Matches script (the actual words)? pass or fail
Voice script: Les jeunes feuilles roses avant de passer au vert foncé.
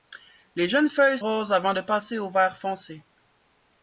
pass